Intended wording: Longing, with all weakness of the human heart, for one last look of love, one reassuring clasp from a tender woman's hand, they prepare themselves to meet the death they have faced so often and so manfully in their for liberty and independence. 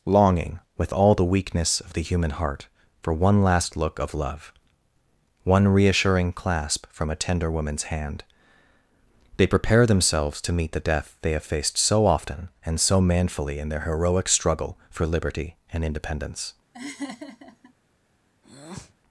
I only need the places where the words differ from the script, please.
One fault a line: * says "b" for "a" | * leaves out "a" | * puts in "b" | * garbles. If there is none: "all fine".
* puts in "the"
* puts in "heroic struggle"